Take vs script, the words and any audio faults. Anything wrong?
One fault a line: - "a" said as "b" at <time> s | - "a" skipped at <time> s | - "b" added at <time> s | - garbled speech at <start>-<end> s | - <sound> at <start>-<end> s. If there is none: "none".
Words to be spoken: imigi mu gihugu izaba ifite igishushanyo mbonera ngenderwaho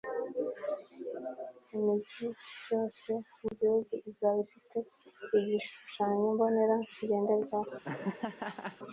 - "yose" added at 2.7 s
- laugh at 7.8-8.8 s